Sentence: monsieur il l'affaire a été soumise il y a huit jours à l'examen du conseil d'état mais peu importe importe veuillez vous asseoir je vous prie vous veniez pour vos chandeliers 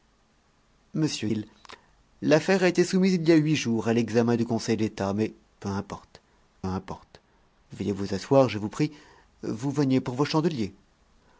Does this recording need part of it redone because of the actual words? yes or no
no